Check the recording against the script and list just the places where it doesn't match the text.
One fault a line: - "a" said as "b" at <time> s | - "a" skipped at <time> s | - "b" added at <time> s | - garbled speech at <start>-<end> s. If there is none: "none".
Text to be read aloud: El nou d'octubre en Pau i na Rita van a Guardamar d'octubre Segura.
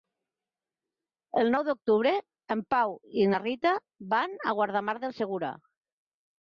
- "d'octubre" said as "del" at 5.1 s